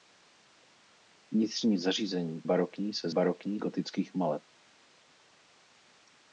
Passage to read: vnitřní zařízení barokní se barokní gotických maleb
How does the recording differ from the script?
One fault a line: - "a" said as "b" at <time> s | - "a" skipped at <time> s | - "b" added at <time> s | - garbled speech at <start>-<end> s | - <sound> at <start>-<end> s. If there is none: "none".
none